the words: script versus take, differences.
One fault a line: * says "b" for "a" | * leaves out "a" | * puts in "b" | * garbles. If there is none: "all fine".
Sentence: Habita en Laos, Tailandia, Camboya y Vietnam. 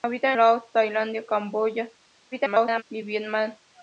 * leaves out "en"
* garbles